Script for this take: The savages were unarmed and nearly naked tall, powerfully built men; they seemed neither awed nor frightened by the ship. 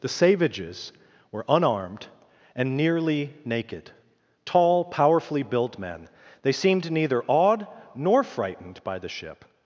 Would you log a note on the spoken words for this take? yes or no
no